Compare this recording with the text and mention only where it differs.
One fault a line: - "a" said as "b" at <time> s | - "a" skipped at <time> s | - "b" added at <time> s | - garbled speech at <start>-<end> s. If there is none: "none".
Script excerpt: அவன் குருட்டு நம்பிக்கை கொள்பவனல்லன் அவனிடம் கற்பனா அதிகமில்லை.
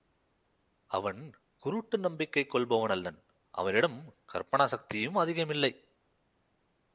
- "சக்தியும்" added at 4.7 s